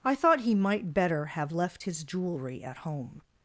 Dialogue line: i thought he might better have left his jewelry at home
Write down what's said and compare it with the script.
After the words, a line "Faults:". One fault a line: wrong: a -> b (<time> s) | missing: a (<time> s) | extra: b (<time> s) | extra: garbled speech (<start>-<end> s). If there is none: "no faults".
i thought he might better have left his jewelry at home
Faults:
no faults